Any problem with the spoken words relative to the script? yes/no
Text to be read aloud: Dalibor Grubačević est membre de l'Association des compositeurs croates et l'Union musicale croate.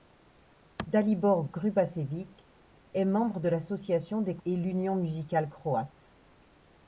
yes